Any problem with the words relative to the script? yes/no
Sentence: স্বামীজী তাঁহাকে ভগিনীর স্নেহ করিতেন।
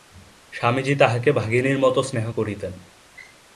yes